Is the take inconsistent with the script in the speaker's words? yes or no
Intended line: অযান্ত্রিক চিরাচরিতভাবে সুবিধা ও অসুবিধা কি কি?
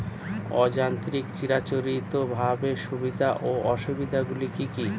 yes